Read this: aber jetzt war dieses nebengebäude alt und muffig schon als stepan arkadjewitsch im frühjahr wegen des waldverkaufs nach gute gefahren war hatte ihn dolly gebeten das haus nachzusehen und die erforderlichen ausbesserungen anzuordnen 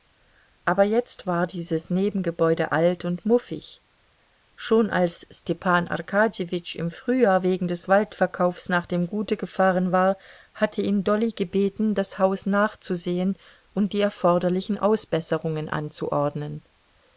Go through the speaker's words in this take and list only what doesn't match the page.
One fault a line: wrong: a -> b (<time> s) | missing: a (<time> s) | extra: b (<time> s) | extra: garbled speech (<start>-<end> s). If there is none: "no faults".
extra: dem (8.9 s)